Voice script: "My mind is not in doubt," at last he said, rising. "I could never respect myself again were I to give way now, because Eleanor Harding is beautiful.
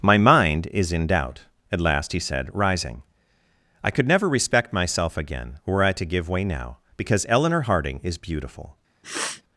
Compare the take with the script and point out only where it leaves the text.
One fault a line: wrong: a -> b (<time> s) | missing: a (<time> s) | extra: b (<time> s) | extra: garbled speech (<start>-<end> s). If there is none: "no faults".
missing: not (0.9 s)